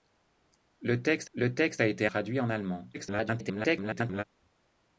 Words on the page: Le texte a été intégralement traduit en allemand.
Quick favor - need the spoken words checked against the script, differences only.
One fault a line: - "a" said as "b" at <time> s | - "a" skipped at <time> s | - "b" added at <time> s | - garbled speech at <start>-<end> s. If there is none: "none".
- "le texte" added at 1.3 s
- "intégralement" skipped at 2.1 s
- garbled speech at 2.9-4.2 s